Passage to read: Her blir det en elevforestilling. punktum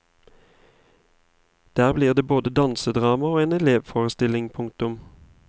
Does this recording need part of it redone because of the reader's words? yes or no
yes